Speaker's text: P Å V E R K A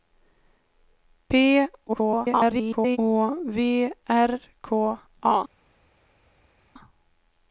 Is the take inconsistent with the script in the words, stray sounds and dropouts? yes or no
yes